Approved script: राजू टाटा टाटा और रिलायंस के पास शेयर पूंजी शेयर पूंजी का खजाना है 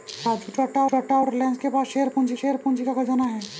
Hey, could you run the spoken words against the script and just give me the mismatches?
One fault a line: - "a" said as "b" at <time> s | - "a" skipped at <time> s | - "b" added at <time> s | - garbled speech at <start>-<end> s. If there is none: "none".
none